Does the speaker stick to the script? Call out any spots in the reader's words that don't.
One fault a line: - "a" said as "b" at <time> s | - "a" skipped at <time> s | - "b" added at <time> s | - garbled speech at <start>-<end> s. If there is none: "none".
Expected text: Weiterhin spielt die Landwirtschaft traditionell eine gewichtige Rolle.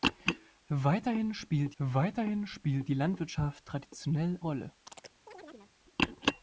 - "weiterhin spielt" added at 1.8 s
- "eine gewichtige" skipped at 4.4 s